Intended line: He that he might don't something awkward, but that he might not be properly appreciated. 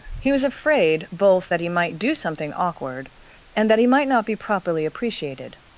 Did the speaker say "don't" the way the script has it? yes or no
no